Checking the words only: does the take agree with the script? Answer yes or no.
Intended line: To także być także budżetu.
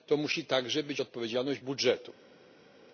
no